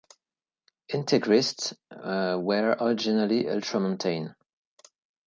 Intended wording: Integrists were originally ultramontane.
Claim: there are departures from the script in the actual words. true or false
false